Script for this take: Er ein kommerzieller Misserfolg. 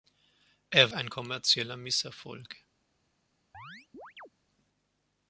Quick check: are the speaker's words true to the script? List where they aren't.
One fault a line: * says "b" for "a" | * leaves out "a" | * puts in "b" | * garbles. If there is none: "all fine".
all fine